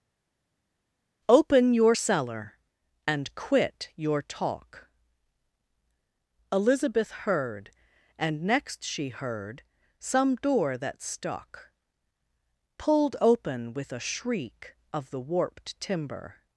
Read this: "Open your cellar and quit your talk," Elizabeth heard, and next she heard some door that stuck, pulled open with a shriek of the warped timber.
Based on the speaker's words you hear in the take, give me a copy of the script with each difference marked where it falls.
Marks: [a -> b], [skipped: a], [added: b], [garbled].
"Open your cellar and quit your talk," Elizabeth heard, and next she heard some door that stuck, pulled open with a shriek of the warped timber.